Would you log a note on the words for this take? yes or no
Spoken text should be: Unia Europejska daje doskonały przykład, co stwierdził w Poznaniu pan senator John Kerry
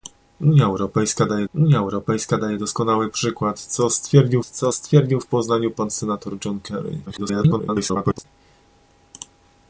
yes